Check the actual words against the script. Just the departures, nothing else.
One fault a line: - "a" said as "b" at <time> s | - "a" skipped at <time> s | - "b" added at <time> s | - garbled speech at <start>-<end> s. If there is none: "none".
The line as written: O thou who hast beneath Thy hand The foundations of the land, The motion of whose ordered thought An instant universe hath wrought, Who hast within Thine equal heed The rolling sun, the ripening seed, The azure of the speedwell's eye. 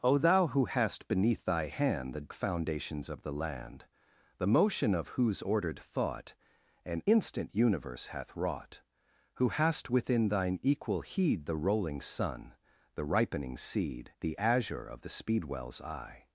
none